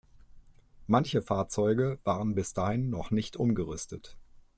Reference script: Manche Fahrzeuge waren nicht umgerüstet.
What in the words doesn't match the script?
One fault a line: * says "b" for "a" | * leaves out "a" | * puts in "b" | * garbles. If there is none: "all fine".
* puts in "bis dahin noch"